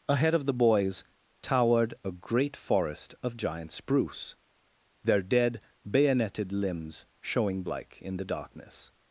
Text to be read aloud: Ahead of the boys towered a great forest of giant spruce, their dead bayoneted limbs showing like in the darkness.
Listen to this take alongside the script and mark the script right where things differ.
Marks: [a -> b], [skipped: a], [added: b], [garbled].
Ahead of the boys towered a great forest of giant spruce, their dead bayoneted limbs showing like in the darkness.